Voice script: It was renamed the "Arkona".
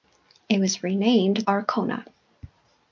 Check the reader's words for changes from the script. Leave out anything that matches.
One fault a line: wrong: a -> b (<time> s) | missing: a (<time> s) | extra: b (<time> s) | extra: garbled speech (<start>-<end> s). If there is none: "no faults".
missing: the (1.4 s)